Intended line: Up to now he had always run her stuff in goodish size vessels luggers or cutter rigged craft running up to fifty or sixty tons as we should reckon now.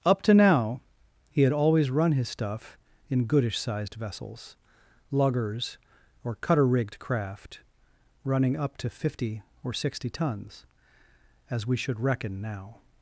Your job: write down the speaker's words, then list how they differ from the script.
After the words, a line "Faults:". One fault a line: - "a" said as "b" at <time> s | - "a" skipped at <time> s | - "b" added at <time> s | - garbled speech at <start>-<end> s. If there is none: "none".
Up to now he had always run his stuff in goodish sized vessels luggers or cutter rigged craft running up to fifty or sixty tons as we should reckon now.
Faults:
- "her" said as "his" at 2.1 s
- "size" said as "sized" at 3.6 s